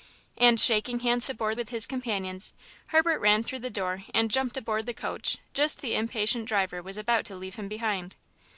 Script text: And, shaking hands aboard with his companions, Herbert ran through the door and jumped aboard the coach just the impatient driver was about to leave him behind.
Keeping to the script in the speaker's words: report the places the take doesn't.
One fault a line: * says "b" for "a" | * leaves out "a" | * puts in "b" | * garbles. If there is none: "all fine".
all fine